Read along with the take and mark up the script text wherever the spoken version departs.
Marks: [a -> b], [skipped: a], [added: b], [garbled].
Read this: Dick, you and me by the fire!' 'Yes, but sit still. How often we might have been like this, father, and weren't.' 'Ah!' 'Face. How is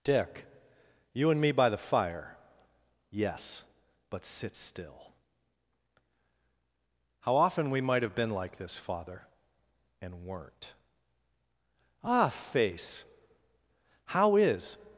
Dick, you and me by the fire!' 'Yes, but sit still. How often we might have been like this, father, and weren't.' 'Ah!' 'Face. How is